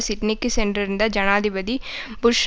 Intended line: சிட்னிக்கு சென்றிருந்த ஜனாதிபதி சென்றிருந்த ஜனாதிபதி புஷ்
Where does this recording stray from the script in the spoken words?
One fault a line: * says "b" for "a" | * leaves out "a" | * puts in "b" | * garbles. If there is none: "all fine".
* leaves out "சென்றிருந்த ஜனாதிபதி"